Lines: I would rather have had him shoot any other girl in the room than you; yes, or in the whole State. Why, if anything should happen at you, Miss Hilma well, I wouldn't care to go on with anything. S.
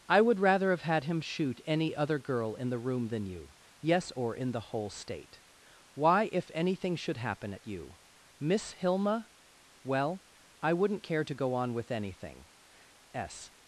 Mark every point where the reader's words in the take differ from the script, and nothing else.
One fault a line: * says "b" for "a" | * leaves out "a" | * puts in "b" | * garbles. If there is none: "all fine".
all fine